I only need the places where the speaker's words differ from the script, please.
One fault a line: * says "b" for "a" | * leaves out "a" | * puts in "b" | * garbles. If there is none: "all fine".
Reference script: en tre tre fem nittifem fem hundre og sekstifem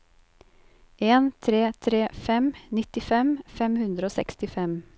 all fine